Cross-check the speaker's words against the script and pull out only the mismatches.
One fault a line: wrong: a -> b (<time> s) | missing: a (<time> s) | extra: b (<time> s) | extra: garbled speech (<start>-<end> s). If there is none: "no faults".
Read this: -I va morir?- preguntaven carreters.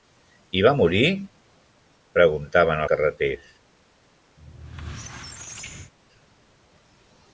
no faults